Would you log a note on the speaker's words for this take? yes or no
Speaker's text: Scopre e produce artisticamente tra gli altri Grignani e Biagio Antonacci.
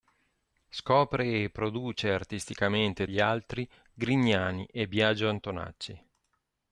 yes